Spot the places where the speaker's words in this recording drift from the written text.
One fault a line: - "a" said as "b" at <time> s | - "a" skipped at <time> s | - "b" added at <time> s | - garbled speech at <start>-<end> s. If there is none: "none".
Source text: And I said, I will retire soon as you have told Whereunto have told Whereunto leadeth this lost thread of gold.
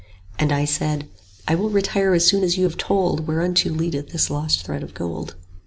- "as" added at 2.1 s
- "have told Whereunto" skipped at 3.7 s